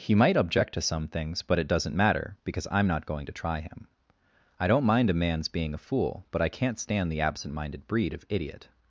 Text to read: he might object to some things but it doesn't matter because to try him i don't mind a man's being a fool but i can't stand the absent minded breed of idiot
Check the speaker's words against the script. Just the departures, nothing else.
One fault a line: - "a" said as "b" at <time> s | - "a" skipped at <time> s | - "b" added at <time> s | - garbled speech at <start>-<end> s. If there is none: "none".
- "i'm not going" added at 2.7 s